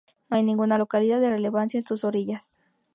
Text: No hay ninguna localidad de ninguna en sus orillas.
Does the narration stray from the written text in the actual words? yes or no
yes